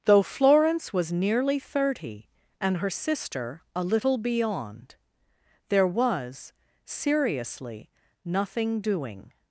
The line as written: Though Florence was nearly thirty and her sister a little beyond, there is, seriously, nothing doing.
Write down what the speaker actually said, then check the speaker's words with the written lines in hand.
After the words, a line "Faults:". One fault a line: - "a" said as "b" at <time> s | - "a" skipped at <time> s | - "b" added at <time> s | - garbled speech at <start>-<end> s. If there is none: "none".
Though Florence was nearly thirty and her sister a little beyond, there was, seriously, nothing doing.
Faults:
- "is" said as "was" at 5.9 s